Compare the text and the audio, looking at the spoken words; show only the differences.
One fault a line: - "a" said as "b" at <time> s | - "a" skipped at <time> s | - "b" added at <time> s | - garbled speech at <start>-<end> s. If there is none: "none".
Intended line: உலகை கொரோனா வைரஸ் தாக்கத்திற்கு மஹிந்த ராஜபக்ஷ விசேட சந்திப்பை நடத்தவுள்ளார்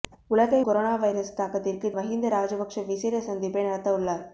none